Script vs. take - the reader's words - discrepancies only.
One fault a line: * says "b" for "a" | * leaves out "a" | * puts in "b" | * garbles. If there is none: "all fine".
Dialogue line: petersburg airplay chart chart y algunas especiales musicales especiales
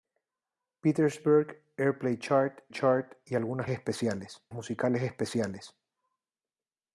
all fine